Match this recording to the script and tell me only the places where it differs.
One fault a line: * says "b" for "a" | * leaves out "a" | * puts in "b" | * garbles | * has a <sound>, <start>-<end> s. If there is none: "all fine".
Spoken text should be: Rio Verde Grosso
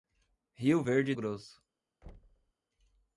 * has a thud, 2.0-2.5 s